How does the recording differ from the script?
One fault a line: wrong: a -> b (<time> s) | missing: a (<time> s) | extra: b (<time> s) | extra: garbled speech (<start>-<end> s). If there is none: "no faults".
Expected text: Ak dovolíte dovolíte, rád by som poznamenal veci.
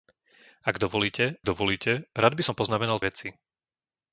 no faults